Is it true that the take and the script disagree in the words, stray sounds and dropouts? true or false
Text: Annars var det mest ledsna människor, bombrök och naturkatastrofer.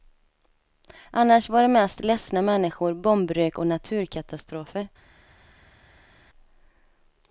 false